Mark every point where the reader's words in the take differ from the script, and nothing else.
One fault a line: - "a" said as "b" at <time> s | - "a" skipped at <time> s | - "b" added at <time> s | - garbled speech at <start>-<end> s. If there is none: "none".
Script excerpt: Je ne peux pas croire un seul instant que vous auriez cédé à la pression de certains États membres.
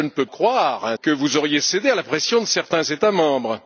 - "pas" skipped at 0.2 s
- "seul instant" skipped at 0.9 s